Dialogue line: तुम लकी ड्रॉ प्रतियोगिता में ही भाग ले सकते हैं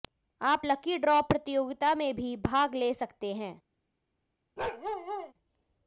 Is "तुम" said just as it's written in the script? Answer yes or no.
no